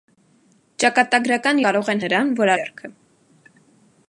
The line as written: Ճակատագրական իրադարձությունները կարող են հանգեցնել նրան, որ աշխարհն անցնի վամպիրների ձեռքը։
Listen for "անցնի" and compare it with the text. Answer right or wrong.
wrong